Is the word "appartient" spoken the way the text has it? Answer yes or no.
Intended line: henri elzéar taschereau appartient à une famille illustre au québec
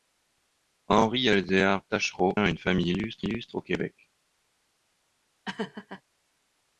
no